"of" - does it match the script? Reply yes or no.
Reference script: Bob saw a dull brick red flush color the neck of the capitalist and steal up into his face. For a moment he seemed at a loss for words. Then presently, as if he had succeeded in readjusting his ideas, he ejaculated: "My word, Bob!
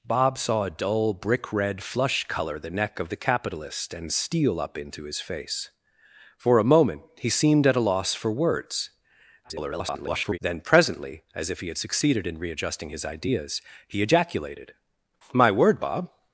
yes